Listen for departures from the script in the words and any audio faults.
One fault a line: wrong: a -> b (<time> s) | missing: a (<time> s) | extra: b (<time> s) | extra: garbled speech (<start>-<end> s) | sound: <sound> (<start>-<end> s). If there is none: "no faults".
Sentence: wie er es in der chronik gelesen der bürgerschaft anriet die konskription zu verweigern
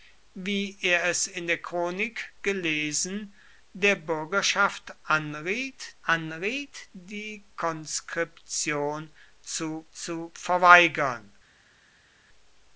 extra: anriet (6.0 s)
extra: zu (9.9 s)